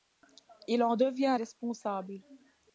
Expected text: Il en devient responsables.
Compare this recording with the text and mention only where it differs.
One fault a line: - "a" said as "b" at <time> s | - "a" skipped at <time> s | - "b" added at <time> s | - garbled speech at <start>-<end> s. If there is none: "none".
none